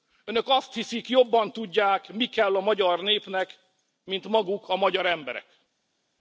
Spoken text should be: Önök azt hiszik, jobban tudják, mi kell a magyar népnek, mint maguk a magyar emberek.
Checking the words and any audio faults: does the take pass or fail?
pass